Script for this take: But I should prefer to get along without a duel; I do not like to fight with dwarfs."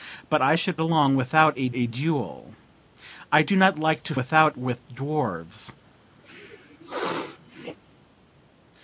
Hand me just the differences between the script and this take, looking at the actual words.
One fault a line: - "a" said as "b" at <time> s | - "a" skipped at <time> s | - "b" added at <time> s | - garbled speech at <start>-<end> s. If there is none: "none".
- "prefer to get" skipped at 0.8 s
- "a" added at 1.7 s
- "fight" said as "without" at 4.2 s